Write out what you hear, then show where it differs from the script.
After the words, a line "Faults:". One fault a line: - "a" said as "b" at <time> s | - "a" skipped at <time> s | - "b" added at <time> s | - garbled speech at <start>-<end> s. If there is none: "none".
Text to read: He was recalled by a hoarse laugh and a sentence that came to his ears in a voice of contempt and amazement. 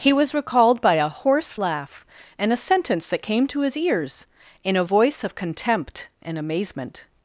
He was recalled by a hoarse laugh and a sentence that came to his ears in a voice of contempt and amazement.
Faults:
none